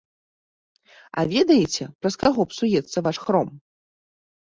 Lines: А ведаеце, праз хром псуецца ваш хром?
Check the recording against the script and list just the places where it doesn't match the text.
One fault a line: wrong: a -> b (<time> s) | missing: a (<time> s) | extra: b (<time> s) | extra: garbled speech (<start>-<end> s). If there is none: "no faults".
wrong: хром -> каго (2.3 s)